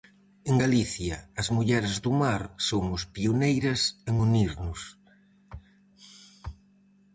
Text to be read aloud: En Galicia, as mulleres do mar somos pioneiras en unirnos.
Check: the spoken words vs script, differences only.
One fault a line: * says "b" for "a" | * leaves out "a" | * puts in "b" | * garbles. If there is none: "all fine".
all fine